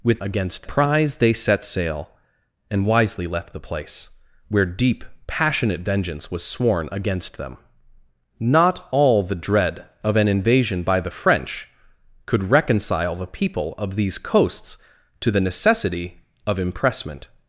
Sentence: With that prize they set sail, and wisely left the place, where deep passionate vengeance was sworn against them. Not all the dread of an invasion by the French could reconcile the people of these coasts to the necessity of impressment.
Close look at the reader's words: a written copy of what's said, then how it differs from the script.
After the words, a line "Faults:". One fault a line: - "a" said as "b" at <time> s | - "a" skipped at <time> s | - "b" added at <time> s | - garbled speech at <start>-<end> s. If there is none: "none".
With against prize they set sail, and wisely left the place, where deep passionate vengeance was sworn against them. Not all the dread of an invasion by the French could reconcile the people of these coasts to the necessity of impressment.
Faults:
- "that" said as "against" at 0.2 s